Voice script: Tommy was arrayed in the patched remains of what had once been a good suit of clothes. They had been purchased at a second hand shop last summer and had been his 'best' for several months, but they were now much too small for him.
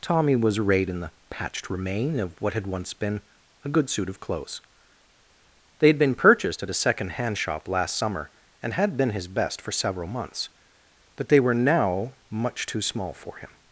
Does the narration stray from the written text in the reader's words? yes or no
yes